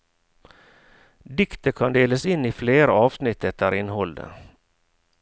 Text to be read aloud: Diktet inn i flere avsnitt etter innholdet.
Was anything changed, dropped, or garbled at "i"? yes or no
no